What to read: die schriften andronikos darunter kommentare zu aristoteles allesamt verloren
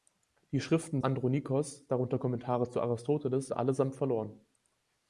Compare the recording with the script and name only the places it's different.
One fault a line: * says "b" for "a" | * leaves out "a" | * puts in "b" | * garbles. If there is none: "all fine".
all fine